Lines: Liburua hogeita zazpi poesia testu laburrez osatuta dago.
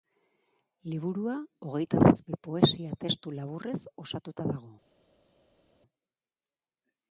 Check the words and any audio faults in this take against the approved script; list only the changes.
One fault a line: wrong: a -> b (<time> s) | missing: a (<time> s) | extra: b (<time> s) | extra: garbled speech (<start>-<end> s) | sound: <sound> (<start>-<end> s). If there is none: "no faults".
no faults